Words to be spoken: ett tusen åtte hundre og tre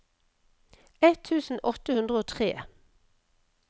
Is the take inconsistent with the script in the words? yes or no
no